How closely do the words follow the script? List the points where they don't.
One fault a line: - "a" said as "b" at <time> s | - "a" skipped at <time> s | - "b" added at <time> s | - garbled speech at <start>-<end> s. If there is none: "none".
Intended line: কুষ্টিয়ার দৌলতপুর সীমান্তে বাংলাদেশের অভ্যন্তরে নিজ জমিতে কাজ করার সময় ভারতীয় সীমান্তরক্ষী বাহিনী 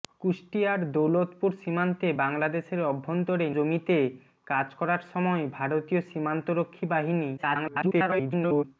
- "নিজ" skipped at 3.5 s
- garbled speech at 7.4-8.6 s